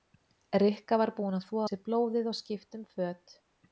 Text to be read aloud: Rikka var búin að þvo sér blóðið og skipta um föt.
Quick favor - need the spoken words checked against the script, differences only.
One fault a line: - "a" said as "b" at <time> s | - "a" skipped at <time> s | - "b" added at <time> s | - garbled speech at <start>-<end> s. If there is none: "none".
none